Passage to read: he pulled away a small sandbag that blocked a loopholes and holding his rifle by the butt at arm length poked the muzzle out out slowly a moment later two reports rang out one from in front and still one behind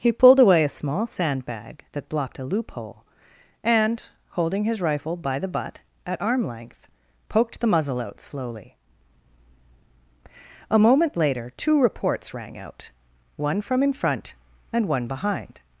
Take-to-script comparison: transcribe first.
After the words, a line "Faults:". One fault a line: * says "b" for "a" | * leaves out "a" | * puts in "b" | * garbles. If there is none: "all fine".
he pulled away a small sandbag that blocked a loophole and holding his rifle by the butt at arm length poked the muzzle out slowly a moment later two reports rang out one from in front and one behind
Faults:
* says "loophole" for "loopholes"
* leaves out "out"
* leaves out "still"